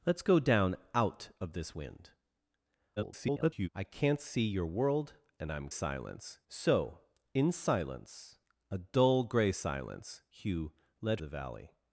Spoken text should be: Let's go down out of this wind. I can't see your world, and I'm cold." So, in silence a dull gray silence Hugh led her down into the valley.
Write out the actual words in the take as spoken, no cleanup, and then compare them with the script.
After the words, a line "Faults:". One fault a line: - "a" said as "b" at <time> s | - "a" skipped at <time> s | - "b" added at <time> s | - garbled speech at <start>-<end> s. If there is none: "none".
Let's go down out of this wind. [garbled] I can't see your world, and I'm silence." So, in silence a dull gray silence Hugh led the valley.
Faults:
- garbled speech at 3.0-3.7 s
- "cold" said as "silence" at 5.7 s
- "her down into" skipped at 11.2 s